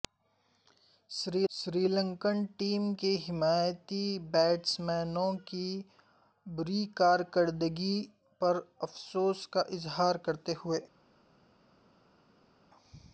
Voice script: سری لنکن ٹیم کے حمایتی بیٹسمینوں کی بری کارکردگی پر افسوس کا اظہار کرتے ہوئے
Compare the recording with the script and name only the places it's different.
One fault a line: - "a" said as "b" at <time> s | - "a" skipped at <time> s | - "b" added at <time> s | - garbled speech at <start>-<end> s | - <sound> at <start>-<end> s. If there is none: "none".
- "سری" added at 1.5 s